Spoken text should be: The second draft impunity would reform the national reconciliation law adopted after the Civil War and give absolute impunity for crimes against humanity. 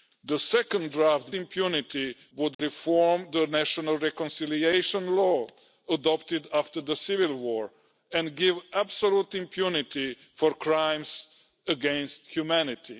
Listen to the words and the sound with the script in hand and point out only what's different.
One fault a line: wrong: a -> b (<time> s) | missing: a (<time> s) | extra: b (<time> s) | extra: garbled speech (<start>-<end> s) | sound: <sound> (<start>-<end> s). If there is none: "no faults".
sound: dropout (2.5-2.6 s)